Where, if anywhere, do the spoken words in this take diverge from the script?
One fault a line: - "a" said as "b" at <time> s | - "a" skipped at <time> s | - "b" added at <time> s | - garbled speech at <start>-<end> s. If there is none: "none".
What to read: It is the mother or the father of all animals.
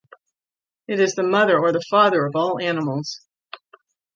none